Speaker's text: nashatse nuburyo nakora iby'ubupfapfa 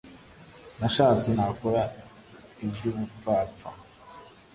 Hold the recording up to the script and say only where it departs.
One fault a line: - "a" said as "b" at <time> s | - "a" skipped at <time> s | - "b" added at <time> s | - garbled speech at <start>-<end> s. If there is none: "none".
- "nuburyo" skipped at 1.3 s